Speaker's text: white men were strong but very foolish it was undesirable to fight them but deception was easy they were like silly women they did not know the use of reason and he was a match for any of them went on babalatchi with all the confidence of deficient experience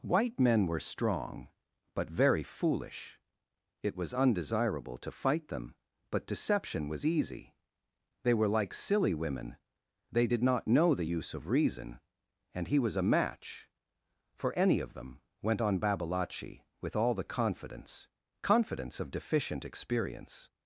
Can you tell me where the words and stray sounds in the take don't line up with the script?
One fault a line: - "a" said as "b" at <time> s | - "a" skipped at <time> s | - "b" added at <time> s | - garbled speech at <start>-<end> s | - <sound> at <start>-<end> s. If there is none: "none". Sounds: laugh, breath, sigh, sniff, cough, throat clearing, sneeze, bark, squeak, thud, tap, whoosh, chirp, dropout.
- "confidence" added at 18.4 s